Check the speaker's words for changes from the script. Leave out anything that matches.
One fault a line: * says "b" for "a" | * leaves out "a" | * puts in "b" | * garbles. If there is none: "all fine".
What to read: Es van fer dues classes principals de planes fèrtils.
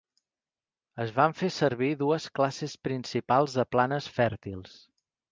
* puts in "servir"